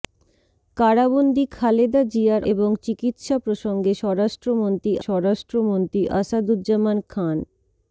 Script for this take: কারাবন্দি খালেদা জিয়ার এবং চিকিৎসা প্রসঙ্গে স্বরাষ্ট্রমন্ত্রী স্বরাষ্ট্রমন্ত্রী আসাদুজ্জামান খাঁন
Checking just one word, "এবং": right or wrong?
right